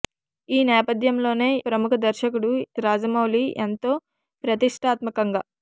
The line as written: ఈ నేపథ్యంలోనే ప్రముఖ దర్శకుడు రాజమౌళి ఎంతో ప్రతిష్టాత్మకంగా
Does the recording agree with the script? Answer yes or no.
yes